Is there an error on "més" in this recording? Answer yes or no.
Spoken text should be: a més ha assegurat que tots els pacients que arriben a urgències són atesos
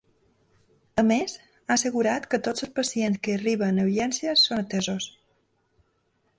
no